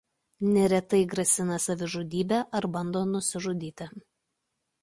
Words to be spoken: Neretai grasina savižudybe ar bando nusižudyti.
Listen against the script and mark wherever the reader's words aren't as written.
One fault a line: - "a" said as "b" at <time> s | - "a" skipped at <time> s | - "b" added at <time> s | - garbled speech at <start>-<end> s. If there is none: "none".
none